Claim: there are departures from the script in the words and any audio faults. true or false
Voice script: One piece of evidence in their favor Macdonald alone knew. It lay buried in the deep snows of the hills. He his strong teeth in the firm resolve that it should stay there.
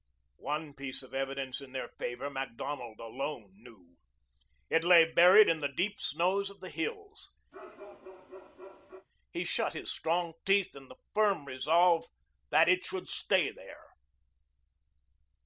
true